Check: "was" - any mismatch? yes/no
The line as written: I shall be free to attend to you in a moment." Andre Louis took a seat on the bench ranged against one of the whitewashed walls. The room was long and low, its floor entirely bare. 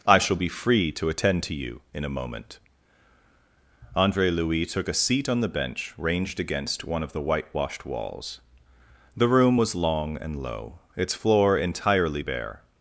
no